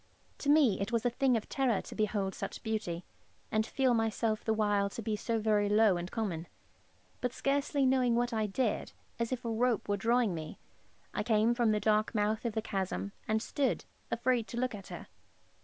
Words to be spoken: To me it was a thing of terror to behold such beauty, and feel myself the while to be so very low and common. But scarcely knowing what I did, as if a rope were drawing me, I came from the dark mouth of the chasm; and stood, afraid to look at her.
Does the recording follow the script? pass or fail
pass